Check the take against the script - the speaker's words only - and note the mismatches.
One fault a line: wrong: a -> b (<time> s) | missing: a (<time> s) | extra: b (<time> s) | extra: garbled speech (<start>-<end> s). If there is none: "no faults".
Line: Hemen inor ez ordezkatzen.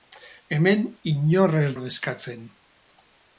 no faults